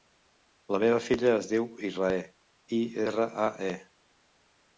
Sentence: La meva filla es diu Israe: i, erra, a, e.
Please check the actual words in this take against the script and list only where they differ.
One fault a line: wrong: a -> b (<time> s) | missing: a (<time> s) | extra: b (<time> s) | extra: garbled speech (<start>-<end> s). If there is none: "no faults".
no faults